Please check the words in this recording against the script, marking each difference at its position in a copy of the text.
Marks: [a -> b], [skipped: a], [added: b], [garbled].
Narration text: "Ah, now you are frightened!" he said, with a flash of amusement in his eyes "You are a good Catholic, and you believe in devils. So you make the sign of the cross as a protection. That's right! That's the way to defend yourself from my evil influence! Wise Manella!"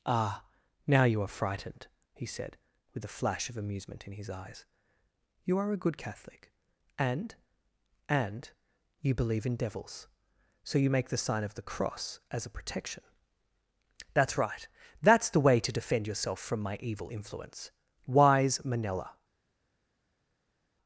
"Ah, now you are frightened!" he said, with a flash of amusement in his eyes "You are a good Catholic, and [added: and] you believe in devils. So you make the sign of the cross as a protection. That's right! That's the way to defend yourself from my evil influence! Wise Manella!"